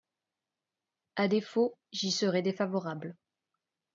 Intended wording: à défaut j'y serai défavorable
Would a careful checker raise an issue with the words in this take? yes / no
no